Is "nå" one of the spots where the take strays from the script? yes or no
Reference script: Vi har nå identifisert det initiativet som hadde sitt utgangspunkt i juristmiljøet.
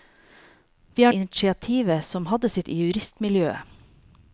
yes